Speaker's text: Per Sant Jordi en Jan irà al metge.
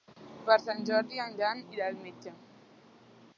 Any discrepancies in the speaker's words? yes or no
no